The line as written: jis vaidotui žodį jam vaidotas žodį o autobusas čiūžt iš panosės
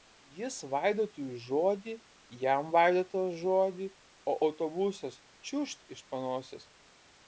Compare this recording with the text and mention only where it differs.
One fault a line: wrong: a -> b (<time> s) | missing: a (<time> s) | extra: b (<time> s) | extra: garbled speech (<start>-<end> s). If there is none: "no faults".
no faults